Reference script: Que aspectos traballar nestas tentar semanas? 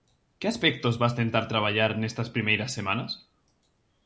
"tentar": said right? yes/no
no